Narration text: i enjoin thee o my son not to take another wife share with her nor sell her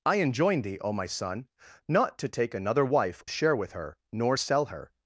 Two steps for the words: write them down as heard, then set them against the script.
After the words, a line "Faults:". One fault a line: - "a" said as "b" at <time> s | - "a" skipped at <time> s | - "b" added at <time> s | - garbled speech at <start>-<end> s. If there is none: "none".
i enjoin thee o my son not to take another wife share with her nor sell her
Faults:
none